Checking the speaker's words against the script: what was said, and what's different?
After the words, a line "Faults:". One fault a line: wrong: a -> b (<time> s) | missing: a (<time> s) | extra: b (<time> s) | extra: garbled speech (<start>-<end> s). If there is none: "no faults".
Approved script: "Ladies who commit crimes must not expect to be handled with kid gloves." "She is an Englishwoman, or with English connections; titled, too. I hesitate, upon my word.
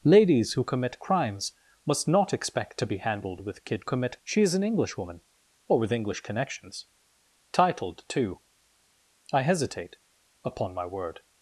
"Ladies who commit crimes must not expect to be handled with kid commit." "She is an Englishwoman, or with English connections; titled, too. I hesitate, upon my word.
Faults:
wrong: gloves -> commit (3.8 s)